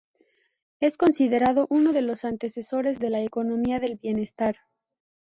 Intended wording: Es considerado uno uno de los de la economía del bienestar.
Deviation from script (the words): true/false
true